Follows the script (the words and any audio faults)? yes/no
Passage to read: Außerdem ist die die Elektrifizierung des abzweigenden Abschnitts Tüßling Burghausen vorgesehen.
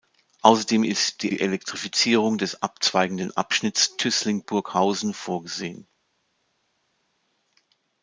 yes